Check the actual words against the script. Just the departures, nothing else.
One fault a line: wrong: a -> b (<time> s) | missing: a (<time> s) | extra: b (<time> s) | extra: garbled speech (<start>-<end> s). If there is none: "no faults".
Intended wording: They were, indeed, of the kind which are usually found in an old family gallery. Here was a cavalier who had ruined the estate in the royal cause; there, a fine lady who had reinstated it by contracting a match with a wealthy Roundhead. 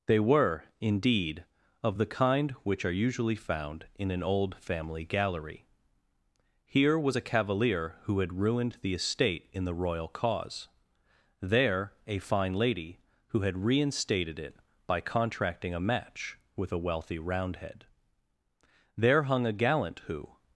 extra: There hung a gallant who (18.9 s)